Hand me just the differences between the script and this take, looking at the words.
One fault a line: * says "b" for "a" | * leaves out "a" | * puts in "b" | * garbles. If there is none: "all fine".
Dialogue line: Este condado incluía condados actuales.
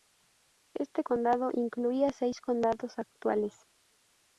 * puts in "seis"